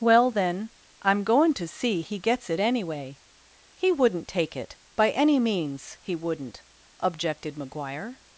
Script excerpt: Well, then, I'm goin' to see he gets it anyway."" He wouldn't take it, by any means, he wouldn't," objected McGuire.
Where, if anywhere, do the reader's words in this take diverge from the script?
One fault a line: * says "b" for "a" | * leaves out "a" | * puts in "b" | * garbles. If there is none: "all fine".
all fine